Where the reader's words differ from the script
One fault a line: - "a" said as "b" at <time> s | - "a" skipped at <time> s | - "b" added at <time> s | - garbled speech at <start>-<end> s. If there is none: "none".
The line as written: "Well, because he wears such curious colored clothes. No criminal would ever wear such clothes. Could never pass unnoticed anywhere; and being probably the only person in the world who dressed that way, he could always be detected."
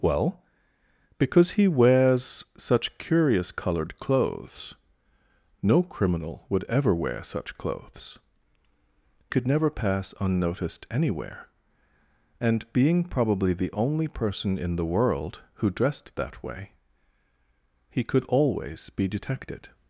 none